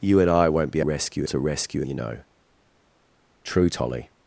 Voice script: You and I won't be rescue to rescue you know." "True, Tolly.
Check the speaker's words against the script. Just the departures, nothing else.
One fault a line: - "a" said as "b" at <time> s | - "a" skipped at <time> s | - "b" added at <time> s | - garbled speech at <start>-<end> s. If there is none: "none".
none